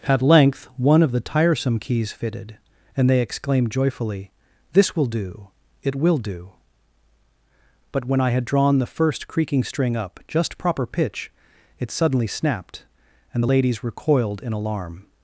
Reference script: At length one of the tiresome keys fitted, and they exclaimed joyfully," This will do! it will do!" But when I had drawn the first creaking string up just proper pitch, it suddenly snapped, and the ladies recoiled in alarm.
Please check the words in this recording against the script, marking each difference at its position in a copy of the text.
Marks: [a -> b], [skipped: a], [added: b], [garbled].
At length one of the tiresome keys fitted, and they exclaimed joyfully," This will do! it will do!" But when I had drawn the first creaking string up just proper pitch, it suddenly snapped, and the ladies recoiled in alarm.